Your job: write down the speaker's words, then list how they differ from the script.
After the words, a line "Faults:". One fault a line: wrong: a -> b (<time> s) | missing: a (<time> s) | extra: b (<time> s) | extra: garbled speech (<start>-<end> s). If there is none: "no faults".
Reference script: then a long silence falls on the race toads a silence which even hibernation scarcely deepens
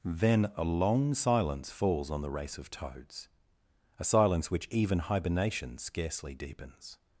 then a long silence falls on the race of toads a silence which even hibernation scarcely deepens
Faults:
extra: of (2.6 s)